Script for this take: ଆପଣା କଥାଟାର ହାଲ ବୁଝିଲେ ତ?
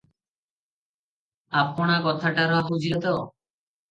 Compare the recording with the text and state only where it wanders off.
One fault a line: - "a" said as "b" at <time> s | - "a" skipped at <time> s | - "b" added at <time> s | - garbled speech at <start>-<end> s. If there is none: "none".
- "ହାଲ" skipped at 2.6 s